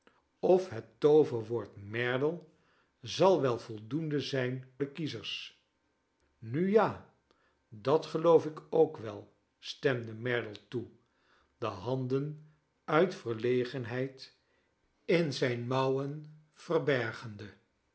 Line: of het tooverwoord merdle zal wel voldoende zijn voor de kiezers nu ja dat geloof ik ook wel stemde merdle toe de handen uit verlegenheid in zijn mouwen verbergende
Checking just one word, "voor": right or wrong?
wrong